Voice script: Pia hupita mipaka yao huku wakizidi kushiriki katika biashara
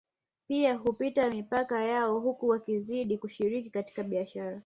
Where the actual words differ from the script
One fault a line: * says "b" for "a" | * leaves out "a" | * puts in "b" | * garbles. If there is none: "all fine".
all fine